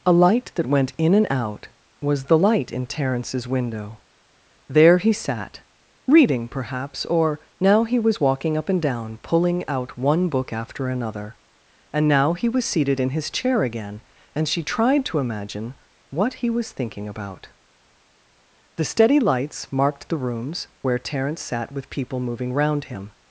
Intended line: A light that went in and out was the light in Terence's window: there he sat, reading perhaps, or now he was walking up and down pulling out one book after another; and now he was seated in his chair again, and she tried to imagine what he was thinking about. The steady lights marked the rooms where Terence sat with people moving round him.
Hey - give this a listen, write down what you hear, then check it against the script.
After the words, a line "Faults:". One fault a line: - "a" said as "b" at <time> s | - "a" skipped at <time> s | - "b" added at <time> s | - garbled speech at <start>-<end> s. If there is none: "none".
A light that went in and out was the light in Terence's window: there he sat, reading perhaps, or now he was walking up and down pulling out one book after another; and now he was seated in his chair again, and she tried to imagine what he was thinking about. The steady lights marked the rooms where Terence sat with people moving round him.
Faults:
none